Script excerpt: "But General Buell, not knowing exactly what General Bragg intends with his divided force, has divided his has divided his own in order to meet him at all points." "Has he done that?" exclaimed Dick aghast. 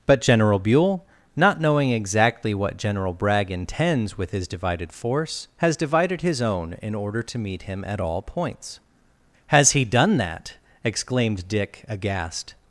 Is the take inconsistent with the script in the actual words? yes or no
yes